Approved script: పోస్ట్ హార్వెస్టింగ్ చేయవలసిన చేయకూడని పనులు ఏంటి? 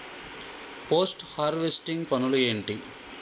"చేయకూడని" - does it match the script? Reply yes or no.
no